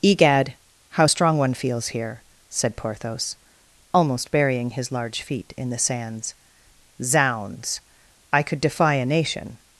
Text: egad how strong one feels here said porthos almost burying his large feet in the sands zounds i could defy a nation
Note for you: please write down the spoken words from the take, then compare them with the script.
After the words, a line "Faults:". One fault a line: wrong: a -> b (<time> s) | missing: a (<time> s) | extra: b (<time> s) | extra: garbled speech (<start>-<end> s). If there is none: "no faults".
egad how strong one feels here said porthos almost burying his large feet in the sands zounds i could defy a nation
Faults:
no faults